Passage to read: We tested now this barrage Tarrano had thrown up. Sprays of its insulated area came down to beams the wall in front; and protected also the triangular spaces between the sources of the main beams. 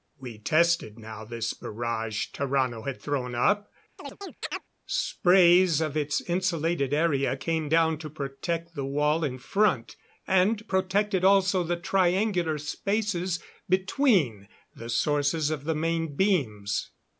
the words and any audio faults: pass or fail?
fail